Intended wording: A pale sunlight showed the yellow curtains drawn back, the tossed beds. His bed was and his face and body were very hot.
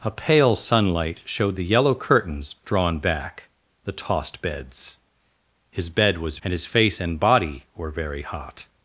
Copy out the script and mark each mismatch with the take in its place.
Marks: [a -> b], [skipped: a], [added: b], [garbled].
A pale sunlight showed the yellow curtains drawn back, the tossed beds. His bed was and his face and body were very hot.